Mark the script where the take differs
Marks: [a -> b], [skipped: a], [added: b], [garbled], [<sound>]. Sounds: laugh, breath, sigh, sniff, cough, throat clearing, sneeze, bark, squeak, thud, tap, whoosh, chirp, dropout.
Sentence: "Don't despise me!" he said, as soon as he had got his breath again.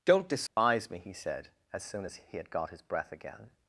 "Don't despise [dropout] me!" he said, as soon as he had got his breath again.